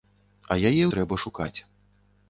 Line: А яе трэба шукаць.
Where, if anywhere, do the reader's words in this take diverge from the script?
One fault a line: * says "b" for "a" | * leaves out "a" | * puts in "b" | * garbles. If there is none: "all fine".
all fine